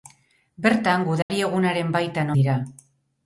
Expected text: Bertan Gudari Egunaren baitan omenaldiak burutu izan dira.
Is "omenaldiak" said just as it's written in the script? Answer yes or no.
no